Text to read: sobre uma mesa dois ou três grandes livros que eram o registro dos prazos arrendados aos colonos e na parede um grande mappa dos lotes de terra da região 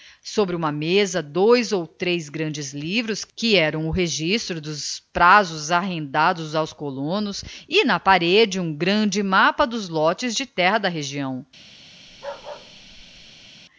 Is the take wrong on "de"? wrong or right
right